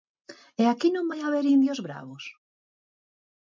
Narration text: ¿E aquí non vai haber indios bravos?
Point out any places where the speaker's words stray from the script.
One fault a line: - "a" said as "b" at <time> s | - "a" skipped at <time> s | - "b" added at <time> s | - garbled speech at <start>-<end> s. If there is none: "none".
none